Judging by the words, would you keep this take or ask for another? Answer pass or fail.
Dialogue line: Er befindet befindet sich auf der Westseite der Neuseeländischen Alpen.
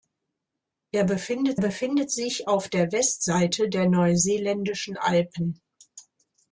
pass